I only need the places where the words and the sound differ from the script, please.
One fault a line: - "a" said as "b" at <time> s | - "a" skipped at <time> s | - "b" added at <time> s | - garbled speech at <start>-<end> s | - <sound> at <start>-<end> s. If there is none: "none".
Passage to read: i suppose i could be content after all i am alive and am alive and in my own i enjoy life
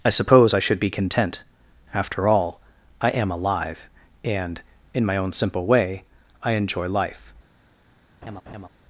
- "could" said as "should" at 0.6 s
- "am alive and" skipped at 4.6 s
- "simple way" added at 5.3 s
- laugh at 8.2-8.7 s